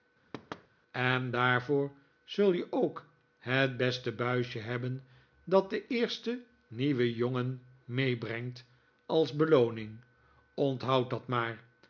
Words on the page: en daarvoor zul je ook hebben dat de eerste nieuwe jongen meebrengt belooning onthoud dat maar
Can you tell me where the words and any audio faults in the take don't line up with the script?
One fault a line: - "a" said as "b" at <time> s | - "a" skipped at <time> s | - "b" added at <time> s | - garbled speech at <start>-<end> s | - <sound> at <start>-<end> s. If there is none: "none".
- thud at 0.3-0.7 s
- "het beste buisje" added at 3.4 s
- "als" added at 9.0 s